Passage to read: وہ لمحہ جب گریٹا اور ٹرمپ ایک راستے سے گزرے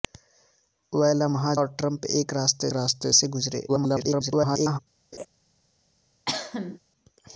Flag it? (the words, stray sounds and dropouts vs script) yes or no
yes